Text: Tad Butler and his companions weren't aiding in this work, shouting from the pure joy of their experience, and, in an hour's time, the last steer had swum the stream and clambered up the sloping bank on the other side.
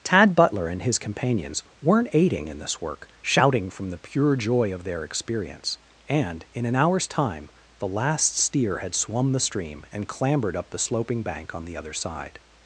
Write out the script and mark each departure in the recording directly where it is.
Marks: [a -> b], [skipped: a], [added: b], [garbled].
Tad Butler and his companions weren't aiding in this work, shouting from the pure joy of their experience, and, in an hour's time, the last steer had swum the stream and clambered up the sloping bank on the other side.